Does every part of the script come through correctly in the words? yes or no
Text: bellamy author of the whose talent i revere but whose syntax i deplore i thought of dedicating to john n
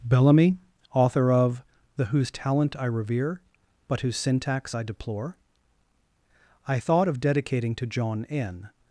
yes